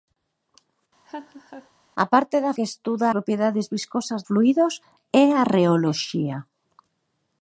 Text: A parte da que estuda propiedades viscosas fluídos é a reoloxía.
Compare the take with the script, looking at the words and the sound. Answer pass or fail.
fail